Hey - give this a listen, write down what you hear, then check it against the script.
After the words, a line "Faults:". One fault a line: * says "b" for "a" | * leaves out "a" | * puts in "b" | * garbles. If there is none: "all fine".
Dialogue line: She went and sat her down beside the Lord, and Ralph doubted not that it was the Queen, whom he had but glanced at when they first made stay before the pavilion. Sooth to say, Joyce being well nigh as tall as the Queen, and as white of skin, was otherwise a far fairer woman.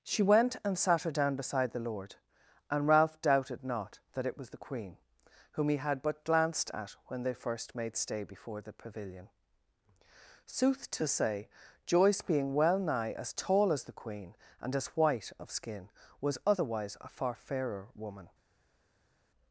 She went and sat her down beside the Lord, and Ralph doubted not that it was the Queen, whom he had but glanced at when they first made stay before the pavilion. Sooth to say, Joyce being well nigh as tall as the Queen, and as white of skin, was otherwise a far fairer woman.
Faults:
all fine